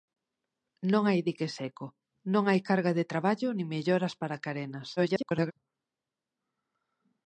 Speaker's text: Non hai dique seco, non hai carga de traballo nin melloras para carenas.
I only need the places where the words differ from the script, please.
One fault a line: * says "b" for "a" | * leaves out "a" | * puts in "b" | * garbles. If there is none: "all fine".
* garbles